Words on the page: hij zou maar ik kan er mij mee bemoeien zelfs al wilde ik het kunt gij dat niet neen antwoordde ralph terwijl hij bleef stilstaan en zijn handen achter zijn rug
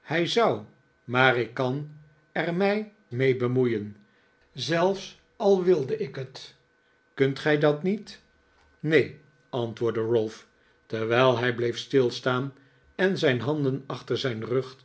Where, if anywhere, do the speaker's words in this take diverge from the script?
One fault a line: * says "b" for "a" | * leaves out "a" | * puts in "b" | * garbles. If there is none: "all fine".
all fine